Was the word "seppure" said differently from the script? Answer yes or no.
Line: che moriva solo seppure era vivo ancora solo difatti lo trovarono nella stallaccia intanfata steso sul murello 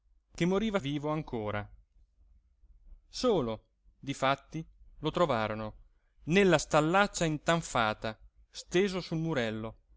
yes